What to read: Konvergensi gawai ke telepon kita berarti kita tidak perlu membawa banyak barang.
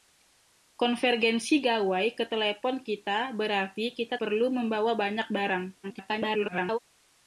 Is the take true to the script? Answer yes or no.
no